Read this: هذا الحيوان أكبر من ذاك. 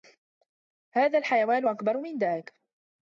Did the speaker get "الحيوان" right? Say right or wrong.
right